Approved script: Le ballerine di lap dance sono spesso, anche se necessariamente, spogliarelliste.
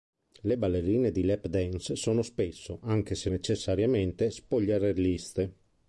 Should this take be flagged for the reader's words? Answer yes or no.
no